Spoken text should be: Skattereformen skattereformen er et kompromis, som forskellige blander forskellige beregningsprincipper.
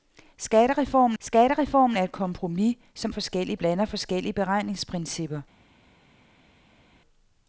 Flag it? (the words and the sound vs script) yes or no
no